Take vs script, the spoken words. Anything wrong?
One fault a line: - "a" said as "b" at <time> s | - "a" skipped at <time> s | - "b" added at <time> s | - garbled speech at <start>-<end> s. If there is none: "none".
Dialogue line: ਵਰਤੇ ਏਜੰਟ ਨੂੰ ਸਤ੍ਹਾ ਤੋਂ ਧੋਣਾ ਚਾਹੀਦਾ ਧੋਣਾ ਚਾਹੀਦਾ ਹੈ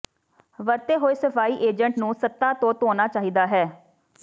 - "ਹੋਏ ਸਫਾਈ" added at 1.0 s
- "ਧੋਣਾ ਚਾਹੀਦਾ" skipped at 3.5 s